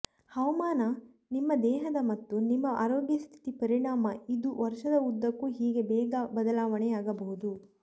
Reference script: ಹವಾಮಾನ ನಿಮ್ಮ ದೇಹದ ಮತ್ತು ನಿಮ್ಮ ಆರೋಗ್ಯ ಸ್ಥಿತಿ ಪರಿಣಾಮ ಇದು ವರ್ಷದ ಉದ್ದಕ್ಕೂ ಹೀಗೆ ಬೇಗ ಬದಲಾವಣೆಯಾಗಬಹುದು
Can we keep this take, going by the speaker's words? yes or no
yes